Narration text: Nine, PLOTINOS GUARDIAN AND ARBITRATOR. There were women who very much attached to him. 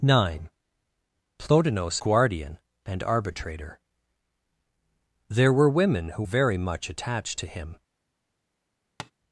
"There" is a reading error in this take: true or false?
false